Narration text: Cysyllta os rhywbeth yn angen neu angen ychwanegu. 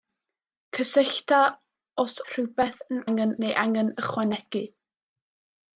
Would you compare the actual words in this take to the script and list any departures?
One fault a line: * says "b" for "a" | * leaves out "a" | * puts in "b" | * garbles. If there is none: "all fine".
all fine